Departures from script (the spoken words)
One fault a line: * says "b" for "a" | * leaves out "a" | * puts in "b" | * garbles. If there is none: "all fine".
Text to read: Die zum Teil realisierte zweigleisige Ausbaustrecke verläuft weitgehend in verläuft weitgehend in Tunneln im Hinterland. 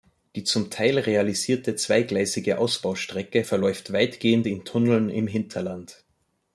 * leaves out "verläuft weitgehend in"